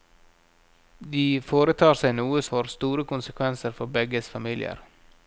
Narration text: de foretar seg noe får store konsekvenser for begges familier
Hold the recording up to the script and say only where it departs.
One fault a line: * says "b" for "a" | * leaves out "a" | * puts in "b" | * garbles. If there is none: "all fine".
all fine